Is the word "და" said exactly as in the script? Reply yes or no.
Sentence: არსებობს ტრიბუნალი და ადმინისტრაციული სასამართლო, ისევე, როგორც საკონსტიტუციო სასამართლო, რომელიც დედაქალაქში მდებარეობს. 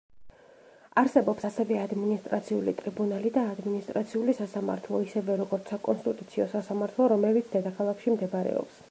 yes